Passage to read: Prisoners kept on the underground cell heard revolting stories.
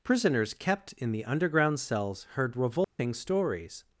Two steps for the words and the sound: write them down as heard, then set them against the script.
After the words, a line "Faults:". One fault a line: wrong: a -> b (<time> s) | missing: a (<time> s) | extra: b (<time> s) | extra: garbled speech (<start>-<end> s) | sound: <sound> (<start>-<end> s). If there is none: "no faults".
Prisoners kept in the underground cells heard revolting stories.
Faults:
wrong: on -> in (0.9 s)
wrong: cell -> cells (1.8 s)
sound: dropout (2.8-3.0 s)